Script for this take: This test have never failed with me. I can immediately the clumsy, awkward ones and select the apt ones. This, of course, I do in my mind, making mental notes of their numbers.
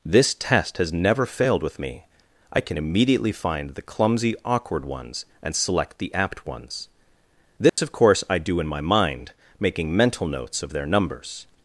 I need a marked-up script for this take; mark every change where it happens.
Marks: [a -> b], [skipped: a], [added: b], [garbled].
This test [have -> has] never failed with me. I can immediately [added: find] the clumsy, awkward ones and select the apt ones. This, of course, I do in my mind, making mental notes of their numbers.